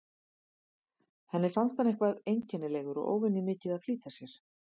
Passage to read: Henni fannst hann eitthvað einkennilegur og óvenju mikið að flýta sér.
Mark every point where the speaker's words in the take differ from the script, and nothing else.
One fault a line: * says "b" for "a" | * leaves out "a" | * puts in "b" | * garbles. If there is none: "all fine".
all fine